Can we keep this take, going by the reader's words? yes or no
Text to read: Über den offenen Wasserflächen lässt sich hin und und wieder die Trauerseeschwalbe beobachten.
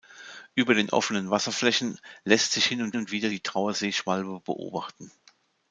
yes